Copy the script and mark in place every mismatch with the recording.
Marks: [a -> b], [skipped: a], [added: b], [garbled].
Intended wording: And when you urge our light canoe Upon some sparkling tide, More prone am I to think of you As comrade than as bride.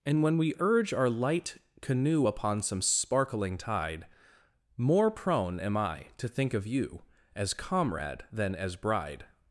And when [you -> we] urge our light canoe Upon some sparkling tide, More prone am I to think of you As comrade than as bride.